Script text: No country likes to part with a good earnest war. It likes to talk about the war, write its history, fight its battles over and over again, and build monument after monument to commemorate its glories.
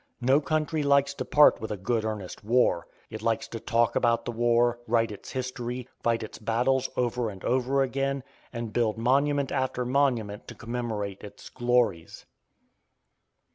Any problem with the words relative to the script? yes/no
no